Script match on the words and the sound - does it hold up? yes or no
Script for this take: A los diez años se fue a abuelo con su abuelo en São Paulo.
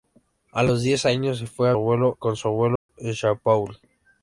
no